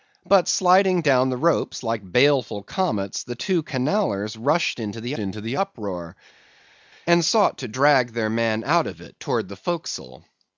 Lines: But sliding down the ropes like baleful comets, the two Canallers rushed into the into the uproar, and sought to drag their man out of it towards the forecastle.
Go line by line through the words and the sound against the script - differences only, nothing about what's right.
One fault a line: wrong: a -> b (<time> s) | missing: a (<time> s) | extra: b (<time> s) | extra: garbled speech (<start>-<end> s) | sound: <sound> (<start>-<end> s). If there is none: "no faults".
no faults